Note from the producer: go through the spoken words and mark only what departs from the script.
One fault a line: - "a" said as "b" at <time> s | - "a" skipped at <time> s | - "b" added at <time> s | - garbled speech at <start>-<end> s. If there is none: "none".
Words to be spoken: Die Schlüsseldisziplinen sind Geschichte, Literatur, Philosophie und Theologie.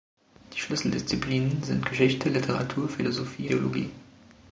- "und" skipped at 3.5 s